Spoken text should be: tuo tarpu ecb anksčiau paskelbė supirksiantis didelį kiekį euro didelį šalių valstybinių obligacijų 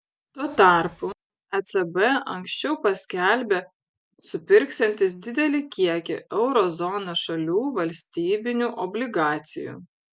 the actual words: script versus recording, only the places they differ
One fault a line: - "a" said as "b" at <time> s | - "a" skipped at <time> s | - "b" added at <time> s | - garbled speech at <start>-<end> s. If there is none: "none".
- "didelį" said as "zonos" at 6.8 s